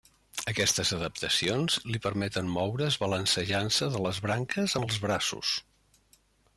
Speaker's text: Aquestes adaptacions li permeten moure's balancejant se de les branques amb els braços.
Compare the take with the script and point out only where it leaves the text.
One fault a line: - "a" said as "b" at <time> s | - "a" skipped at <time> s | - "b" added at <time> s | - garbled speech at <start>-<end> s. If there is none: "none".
none